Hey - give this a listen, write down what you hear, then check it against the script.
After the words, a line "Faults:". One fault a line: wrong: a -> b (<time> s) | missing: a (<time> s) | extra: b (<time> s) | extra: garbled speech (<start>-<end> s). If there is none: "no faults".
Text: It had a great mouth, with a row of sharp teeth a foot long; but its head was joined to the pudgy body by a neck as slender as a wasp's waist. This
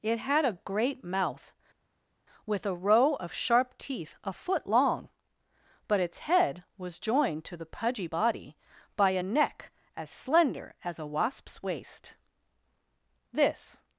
It had a great mouth, with a row of sharp teeth a foot long; but its head was joined to the pudgy body by a neck as slender as a wasp's waist. This
Faults:
no faults